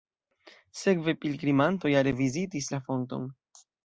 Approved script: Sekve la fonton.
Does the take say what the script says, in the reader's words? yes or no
no